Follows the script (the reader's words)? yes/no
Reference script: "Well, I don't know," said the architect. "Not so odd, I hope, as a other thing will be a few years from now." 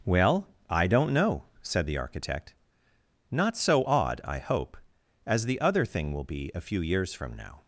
no